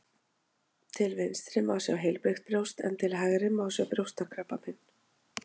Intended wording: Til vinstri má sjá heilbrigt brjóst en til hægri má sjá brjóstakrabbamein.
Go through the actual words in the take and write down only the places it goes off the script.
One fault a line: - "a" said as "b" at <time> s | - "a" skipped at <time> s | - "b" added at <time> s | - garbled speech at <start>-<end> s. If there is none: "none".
none